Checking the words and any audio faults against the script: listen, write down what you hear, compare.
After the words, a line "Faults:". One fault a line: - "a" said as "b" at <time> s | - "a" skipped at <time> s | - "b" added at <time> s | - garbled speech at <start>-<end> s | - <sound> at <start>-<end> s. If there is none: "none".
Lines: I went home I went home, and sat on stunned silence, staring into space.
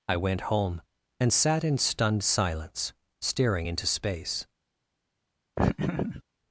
I went home, and sat in stunned silence, staring into space.
Faults:
- "I went home" skipped at 0.8 s
- "on" said as "in" at 1.6 s
- laugh at 5.6-6.2 s